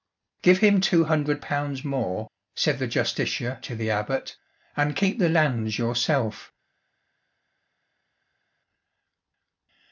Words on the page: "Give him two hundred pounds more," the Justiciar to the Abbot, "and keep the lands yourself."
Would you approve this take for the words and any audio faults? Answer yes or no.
no